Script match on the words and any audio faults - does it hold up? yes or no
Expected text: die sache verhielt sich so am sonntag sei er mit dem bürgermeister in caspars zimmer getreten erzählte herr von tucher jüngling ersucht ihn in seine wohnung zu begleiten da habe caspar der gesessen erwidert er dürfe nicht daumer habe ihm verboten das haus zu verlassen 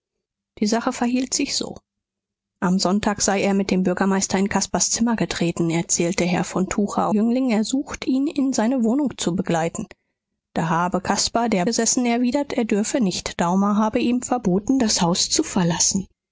yes